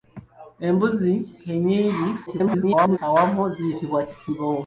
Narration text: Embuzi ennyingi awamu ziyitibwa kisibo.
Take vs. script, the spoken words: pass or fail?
fail